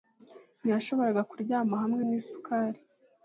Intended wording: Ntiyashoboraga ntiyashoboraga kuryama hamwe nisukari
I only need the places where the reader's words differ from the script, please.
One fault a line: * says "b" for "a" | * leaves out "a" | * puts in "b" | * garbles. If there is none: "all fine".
* leaves out "ntiyashoboraga"